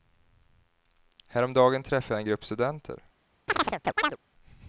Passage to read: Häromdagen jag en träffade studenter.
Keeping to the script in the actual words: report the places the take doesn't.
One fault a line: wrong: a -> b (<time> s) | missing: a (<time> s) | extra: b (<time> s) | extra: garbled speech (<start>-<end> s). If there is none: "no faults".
extra: träffade (1.8 s)
wrong: träffade -> grupp (2.3 s)